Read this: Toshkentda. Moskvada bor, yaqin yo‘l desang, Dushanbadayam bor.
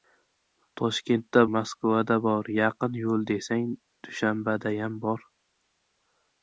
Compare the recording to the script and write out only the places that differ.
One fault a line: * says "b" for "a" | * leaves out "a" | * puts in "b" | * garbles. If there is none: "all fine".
all fine